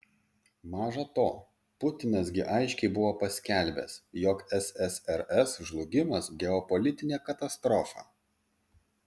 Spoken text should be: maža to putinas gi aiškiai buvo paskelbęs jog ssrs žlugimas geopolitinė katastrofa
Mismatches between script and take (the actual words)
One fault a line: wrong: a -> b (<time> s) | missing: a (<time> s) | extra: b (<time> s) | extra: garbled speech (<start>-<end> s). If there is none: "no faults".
no faults